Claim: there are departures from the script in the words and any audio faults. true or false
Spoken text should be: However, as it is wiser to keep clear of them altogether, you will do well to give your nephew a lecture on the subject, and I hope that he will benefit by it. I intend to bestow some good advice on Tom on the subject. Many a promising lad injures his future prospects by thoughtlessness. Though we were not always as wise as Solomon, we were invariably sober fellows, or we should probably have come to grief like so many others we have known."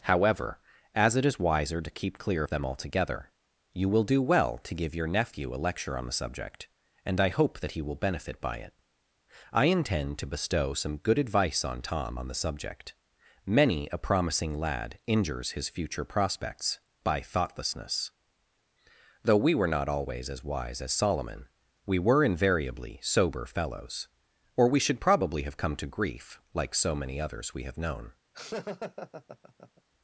true